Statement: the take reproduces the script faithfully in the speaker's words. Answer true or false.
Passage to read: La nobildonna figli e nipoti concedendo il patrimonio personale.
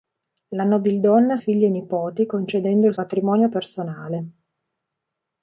true